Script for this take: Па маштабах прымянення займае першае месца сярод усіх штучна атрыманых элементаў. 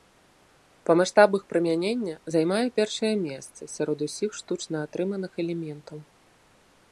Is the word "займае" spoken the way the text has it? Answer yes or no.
yes